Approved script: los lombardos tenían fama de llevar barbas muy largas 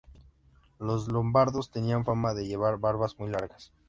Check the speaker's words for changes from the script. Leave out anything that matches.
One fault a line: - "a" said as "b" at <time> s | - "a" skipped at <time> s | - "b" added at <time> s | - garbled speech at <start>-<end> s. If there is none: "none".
none